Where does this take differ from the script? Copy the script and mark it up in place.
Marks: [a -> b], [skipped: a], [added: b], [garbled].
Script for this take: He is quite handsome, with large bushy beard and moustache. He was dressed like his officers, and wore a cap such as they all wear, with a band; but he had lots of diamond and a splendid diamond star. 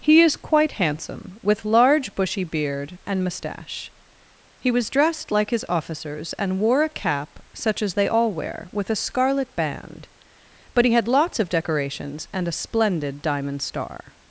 He is quite handsome, with large bushy beard and moustache. He was dressed like his officers, and wore a cap such as they all wear, with a [added: scarlet] band; but he had lots of [diamond -> decorations] and a splendid diamond star.